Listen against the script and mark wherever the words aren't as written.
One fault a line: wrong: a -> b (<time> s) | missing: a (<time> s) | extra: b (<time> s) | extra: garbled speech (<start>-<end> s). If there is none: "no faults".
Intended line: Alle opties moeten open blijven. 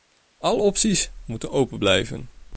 no faults